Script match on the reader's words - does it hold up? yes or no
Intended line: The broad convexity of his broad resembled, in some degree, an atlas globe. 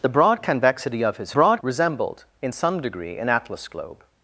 yes